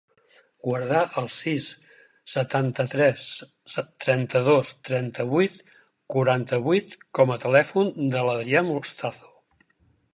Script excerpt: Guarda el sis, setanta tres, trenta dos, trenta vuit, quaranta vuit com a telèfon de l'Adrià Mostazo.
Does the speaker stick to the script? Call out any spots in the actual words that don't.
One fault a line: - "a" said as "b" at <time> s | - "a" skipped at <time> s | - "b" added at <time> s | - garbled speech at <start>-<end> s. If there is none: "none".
none